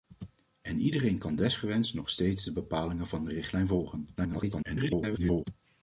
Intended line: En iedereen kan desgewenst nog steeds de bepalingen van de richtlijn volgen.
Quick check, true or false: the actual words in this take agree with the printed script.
false